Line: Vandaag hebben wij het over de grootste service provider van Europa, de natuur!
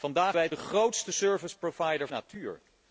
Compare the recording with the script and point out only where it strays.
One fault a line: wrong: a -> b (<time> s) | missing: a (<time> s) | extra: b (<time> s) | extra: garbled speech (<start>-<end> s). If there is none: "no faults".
missing: hebben (0.4 s)
missing: over (0.5 s)
missing: van Europa de (2.1 s)